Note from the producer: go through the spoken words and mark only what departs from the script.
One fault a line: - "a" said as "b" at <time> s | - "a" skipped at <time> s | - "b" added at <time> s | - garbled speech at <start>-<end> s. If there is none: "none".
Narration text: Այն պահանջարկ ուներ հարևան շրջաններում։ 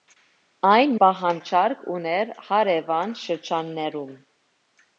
none